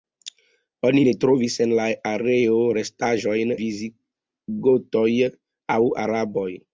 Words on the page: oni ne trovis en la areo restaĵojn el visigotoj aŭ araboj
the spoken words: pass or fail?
fail